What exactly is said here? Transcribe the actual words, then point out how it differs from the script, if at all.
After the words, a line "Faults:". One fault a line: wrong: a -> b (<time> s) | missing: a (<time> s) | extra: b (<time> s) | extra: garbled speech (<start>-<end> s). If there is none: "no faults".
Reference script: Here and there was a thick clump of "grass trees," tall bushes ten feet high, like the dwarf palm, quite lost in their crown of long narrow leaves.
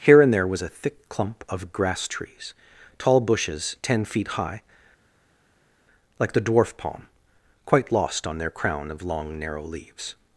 Here and there was a thick clump of "grass trees," tall bushes ten feet high, like the dwarf palm, quite lost on their crown of long narrow leaves.
Faults:
wrong: in -> on (8.3 s)